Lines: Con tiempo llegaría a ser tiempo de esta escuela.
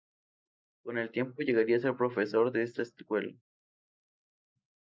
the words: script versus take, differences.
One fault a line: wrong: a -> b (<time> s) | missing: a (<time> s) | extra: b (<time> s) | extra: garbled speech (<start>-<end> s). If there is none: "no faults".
extra: el (1.0 s)
wrong: tiempo -> profesor (2.0 s)